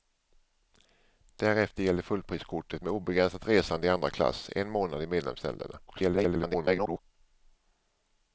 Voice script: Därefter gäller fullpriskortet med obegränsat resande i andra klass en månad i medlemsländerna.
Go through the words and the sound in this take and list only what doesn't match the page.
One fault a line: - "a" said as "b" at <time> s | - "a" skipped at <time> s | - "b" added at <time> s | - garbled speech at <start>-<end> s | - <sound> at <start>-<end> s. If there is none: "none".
- garbled speech at 5.9-7.0 s